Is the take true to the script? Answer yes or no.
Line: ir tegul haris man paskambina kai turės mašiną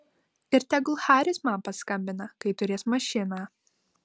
yes